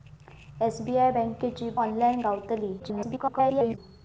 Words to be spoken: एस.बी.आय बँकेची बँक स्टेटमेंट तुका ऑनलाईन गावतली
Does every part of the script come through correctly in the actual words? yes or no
no